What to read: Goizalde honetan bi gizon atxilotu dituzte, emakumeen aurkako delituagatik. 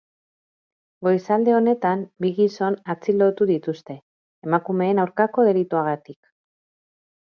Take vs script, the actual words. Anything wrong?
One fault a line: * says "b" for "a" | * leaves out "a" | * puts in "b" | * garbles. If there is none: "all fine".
all fine